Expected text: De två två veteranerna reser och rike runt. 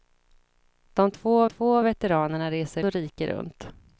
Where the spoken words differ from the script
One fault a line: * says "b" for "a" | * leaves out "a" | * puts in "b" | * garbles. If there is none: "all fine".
all fine